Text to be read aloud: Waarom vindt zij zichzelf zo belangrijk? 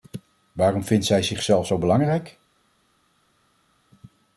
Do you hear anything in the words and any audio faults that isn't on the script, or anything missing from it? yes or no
no